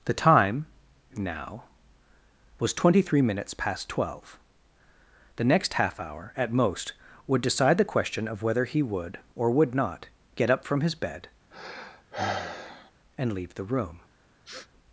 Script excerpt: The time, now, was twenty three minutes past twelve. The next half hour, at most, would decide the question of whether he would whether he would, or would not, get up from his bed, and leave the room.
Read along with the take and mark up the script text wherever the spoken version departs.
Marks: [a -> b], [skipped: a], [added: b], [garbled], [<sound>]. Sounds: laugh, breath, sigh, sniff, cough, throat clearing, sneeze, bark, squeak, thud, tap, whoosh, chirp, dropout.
The time, now, was twenty three minutes past twelve. The next half hour, at most, would decide the question of whether he would [skipped: whether he would,] or would not, get up from his bed, [sigh] and leave the room. [sniff]